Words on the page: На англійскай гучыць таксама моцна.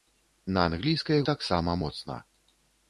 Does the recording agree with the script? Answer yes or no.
no